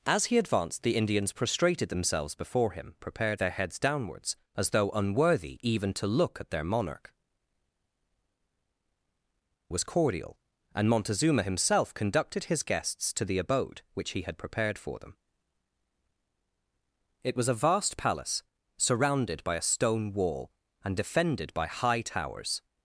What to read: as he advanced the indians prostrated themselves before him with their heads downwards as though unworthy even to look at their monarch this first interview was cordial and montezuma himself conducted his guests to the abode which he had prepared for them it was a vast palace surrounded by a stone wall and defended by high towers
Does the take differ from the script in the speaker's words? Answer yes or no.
yes